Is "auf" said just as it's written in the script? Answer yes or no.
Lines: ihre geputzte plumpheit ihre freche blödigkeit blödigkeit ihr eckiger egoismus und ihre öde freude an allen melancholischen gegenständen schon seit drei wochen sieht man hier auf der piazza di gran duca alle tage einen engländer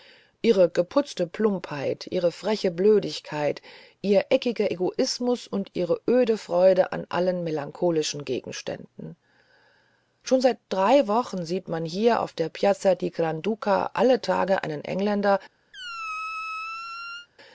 yes